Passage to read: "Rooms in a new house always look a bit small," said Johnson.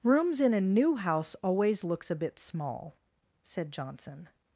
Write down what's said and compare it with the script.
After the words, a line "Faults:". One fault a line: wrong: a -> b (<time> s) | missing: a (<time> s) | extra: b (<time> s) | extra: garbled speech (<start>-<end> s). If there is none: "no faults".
"Rooms in a new house always looks a bit small," said Johnson.
Faults:
wrong: look -> looks (1.8 s)